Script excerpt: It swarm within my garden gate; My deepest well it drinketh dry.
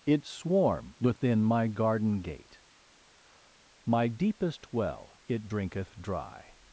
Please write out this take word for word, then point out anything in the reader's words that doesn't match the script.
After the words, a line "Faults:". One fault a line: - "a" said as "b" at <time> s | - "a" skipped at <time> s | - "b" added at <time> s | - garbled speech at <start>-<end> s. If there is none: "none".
It swarm within my garden gate; My deepest well it drinketh dry.
Faults:
none